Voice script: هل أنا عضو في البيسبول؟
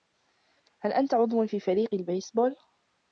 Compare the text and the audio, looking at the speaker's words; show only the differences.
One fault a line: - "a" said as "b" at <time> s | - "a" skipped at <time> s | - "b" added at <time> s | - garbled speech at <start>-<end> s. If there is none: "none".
- "أنا" said as "أنت" at 0.9 s
- "فريق" added at 1.6 s